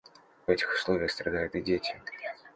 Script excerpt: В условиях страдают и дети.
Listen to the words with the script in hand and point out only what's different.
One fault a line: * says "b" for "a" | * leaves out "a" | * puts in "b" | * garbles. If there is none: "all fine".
* puts in "этих"